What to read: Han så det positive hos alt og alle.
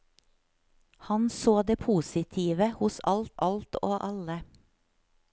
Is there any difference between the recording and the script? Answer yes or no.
yes